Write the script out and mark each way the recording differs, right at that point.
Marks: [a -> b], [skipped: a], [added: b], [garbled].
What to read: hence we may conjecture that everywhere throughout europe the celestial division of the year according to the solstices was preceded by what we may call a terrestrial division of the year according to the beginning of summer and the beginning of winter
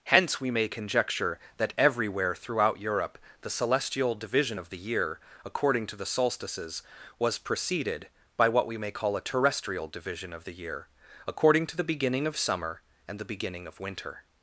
hence we may conjecture that everywhere throughout europe the celestial division of the year according to the solstices was preceded by what we may call a terrestrial division of the year according to the beginning of summer and the beginning of winter